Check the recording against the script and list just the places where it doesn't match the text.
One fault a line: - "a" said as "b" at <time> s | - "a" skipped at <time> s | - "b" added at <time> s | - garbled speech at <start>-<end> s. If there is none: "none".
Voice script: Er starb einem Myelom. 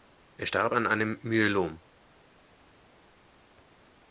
- "an" added at 0.7 s